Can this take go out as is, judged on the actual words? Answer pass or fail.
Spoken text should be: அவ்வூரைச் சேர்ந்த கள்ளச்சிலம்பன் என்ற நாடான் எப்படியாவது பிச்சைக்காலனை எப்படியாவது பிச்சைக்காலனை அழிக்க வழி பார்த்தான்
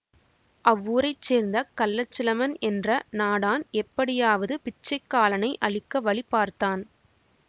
fail